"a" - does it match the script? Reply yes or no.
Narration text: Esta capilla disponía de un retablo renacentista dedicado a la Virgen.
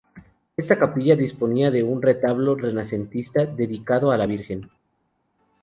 yes